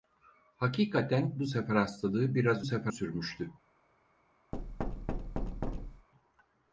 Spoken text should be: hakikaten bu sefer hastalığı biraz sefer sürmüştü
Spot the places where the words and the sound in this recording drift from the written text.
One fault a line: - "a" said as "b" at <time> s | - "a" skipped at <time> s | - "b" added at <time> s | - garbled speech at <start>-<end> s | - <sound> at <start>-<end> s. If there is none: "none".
- thud at 4.5-6.1 s